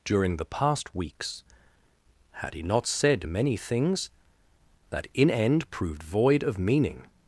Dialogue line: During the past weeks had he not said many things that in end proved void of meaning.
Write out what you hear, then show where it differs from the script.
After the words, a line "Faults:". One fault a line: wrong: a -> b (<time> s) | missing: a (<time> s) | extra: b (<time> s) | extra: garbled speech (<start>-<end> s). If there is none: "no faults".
During the past weeks had he not said many things that in end proved void of meaning.
Faults:
no faults